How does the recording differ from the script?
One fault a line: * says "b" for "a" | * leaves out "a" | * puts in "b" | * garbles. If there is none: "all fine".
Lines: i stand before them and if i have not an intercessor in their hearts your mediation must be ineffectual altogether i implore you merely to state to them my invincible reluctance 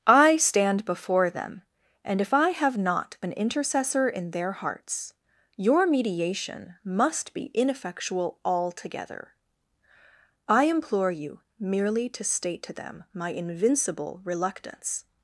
all fine